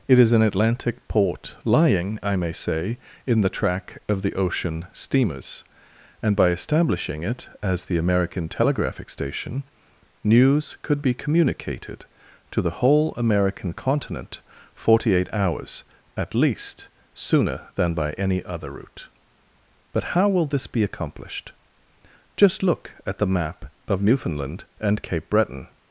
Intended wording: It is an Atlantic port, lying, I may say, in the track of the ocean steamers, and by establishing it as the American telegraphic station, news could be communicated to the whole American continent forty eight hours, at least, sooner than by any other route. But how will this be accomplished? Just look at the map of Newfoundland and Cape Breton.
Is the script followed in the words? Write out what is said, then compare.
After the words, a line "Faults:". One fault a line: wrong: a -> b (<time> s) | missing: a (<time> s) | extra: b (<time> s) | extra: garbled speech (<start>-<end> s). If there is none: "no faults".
It is an Atlantic port, lying, I may say, in the track of the ocean steamers, and by establishing it as the American telegraphic station, news could be communicated to the whole American continent forty eight hours, at least, sooner than by any other route. But how will this be accomplished? Just look at the map of Newfoundland and Cape Breton.
Faults:
no faults